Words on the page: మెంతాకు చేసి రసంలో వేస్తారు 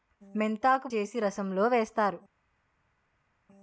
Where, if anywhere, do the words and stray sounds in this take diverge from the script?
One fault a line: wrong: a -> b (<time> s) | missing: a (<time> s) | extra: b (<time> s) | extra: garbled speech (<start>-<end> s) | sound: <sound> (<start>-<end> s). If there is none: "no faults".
no faults